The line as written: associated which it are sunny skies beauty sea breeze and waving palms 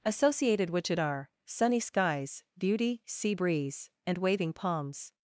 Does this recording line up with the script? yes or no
yes